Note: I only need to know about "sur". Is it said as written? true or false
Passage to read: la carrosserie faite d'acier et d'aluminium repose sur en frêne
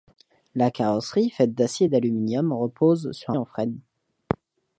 true